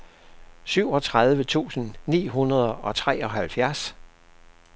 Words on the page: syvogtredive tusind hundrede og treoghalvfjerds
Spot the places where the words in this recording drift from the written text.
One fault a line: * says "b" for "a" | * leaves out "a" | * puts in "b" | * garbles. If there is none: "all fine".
* puts in "ni"